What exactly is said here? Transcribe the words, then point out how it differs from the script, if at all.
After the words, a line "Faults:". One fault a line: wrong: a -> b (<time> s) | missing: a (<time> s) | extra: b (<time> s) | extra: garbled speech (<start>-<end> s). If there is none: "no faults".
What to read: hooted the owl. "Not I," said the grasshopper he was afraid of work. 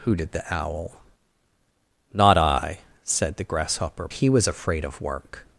hooted the owl. "Not I," said the grasshopper he was afraid of work.
Faults:
no faults